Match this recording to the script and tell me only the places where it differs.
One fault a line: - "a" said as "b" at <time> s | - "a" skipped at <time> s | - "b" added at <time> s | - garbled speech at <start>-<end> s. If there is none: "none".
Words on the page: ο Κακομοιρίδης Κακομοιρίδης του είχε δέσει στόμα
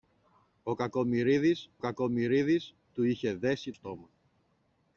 none